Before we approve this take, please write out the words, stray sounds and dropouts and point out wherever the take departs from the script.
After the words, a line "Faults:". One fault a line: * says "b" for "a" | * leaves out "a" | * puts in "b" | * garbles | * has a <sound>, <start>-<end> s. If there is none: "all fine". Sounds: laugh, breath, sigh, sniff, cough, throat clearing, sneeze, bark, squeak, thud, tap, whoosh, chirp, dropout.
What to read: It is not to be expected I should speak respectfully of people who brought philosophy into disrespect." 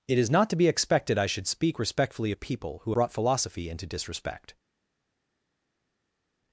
It is not to be expected I should speak respectfully of people who brought philosophy into disrespect."
Faults:
all fine